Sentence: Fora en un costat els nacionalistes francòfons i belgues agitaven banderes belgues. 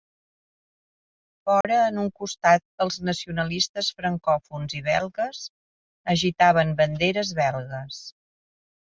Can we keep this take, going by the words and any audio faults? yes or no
no